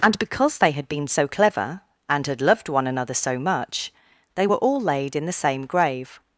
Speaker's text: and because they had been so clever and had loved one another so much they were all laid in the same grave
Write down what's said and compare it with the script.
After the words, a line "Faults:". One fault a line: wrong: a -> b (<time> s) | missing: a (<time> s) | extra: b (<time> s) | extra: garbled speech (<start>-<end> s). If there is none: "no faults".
and because they had been so clever and had loved one another so much they were all laid in the same grave
Faults:
no faults